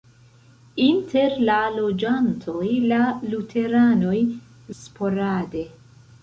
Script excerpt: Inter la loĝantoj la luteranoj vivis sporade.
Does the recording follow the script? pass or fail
fail